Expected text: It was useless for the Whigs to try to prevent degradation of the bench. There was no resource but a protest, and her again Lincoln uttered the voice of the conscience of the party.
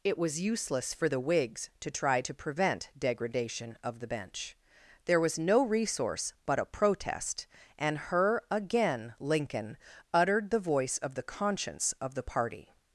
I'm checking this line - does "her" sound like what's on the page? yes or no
yes